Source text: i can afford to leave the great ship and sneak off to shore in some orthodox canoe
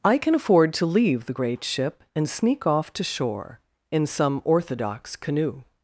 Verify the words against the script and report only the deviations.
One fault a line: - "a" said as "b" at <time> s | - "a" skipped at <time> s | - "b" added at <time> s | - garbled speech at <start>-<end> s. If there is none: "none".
none